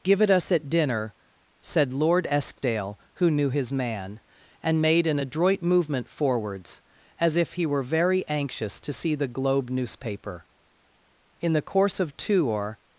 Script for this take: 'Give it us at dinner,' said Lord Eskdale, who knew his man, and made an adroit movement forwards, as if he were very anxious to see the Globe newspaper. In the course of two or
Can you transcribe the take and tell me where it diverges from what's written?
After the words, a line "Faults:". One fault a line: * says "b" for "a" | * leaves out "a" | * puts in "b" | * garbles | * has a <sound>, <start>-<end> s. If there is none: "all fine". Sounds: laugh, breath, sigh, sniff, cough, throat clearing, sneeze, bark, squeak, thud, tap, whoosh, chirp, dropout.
'Give it us at dinner,' said Lord Eskdale, who knew his man, and made an adroit movement forwards, as if he were very anxious to see the Globe newspaper. In the course of two or
Faults:
all fine